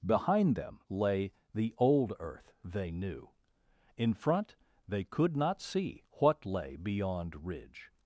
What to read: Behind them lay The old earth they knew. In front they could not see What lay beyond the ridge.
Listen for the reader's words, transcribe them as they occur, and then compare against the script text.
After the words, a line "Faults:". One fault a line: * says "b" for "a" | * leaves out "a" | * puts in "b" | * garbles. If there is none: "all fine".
Behind them lay The old earth they knew. In front they could not see What lay beyond ridge.
Faults:
* leaves out "the"